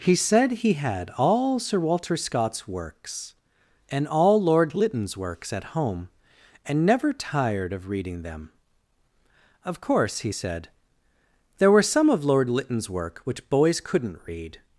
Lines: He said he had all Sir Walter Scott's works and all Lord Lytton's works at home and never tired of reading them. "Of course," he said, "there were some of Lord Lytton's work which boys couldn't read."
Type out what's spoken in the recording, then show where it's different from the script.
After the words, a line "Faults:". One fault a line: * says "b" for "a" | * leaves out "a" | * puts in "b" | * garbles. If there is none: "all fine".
He said he had all Sir Walter Scott's works and all Lord Lytton's works at home and never tired of reading them. "Of course," he said, "there were some of Lord Lytton's work which boys couldn't read."
Faults:
all fine